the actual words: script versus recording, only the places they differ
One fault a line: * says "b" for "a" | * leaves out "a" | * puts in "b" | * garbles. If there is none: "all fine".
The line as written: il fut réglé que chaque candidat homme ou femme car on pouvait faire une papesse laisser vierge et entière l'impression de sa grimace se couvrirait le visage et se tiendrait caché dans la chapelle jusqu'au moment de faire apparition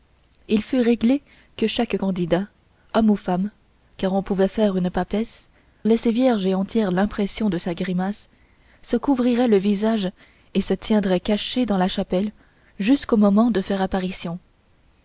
all fine